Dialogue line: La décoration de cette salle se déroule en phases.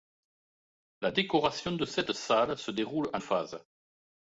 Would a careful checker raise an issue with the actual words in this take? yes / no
no